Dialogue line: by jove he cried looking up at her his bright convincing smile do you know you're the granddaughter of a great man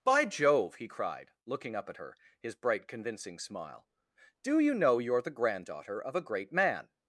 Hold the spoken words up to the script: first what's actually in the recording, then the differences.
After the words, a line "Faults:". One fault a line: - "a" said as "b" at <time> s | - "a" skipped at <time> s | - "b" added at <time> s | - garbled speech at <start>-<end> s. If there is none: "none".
by jove he cried looking up at her his bright convincing smile do you know you're the granddaughter of a great man
Faults:
none